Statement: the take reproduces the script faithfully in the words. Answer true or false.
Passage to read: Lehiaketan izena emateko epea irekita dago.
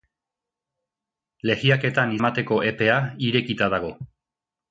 false